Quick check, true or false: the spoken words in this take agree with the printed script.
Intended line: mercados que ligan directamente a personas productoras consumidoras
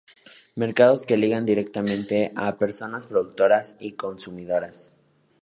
false